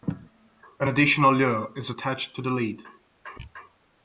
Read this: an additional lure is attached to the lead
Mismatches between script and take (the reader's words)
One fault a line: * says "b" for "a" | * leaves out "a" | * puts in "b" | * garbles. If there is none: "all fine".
all fine